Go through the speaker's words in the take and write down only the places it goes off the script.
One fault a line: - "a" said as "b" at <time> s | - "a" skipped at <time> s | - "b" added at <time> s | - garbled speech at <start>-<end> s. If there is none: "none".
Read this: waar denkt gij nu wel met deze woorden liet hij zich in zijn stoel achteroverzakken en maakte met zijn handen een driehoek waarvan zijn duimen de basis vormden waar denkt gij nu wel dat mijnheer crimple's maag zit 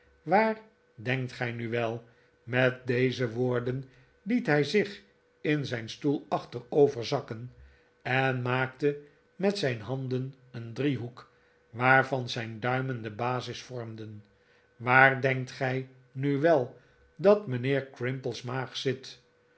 none